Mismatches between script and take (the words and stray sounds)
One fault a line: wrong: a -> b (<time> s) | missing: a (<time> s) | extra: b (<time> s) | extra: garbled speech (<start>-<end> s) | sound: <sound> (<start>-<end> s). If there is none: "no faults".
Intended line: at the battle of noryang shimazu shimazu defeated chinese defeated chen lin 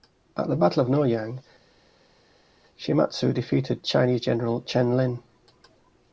missing: shimazu (3.3 s)
wrong: defeated -> general (4.2 s)